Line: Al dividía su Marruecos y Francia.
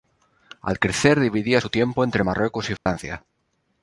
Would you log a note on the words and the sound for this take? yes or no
yes